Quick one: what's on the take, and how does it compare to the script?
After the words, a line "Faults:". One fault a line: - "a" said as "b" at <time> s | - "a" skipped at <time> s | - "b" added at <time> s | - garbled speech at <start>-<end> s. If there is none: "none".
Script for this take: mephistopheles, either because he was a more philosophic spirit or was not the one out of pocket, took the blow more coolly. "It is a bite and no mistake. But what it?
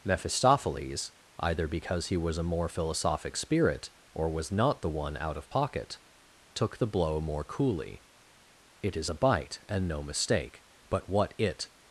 mephistopheles, either because he was a more philosophic spirit or was not the one out of pocket, took the blow more coolly. "It is a bite and no mistake. But what it?
Faults:
none